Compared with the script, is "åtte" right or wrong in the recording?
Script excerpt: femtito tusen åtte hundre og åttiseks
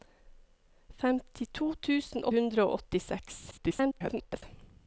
wrong